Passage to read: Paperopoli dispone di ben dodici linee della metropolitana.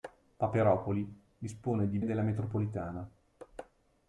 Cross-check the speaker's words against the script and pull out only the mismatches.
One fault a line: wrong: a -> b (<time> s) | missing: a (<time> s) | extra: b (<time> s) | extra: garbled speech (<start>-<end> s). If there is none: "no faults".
missing: ben dodici linee (2.0 s)